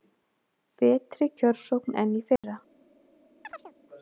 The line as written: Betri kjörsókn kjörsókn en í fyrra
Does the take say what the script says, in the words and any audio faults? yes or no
no